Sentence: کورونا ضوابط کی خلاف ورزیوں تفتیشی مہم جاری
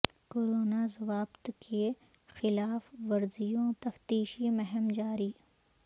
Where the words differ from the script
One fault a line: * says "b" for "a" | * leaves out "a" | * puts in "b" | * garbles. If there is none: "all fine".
all fine